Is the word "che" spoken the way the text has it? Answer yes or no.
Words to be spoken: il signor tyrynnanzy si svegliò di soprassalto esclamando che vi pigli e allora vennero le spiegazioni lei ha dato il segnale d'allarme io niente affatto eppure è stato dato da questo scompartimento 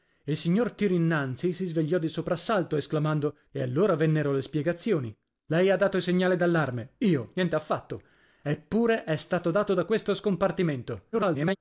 no